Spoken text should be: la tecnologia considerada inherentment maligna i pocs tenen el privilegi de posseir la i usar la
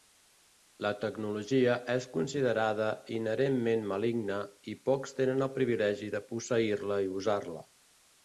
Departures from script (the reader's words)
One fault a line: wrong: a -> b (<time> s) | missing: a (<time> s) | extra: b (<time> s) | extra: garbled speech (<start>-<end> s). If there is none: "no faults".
extra: és (1.9 s)